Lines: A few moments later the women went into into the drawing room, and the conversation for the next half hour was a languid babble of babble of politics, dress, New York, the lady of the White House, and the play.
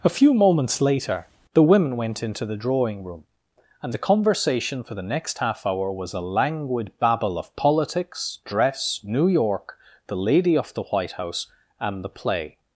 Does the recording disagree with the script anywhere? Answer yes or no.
yes